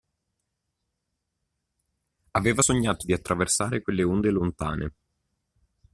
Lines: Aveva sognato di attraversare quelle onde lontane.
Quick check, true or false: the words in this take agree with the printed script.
true